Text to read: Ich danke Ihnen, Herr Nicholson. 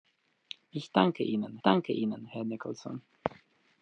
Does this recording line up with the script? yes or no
no